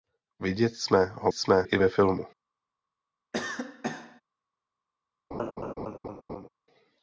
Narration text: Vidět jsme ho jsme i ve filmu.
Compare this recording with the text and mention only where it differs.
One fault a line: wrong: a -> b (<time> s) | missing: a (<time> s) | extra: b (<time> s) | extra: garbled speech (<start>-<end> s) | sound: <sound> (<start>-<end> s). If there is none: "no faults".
sound: cough (3.3-4.2 s)
sound: laugh (5.3-6.5 s)